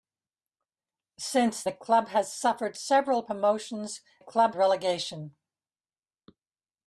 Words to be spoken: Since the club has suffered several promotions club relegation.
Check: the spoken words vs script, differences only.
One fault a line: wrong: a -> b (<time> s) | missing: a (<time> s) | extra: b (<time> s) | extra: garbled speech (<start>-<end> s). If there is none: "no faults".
no faults